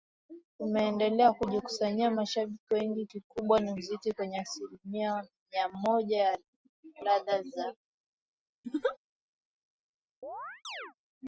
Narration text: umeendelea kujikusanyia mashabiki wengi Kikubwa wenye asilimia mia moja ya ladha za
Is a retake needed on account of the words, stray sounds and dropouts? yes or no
yes